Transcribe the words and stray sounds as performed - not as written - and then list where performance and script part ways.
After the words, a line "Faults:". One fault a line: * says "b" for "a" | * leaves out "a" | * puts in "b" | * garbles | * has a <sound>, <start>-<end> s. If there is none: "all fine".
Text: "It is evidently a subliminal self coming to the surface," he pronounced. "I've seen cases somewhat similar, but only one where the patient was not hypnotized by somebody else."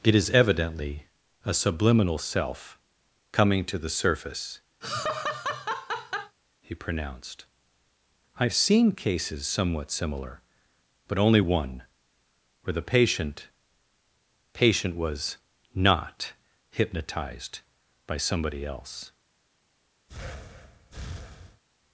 "It is evidently a subliminal self coming to the surface," he pronounced. "I've seen cases somewhat similar, but only one where the patient patient was not hypnotized by somebody else."
Faults:
* has a laugh, 4.8-6.4 s
* puts in "patient"
* has a breath, 20.1-21.6 s